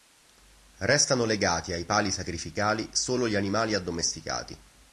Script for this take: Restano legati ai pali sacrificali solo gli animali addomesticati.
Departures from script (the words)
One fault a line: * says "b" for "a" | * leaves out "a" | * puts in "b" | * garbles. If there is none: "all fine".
all fine